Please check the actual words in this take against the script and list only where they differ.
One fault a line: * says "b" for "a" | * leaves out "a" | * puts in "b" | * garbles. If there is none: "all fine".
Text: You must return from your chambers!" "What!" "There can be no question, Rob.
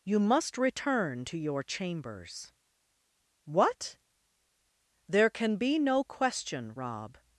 * says "to" for "from"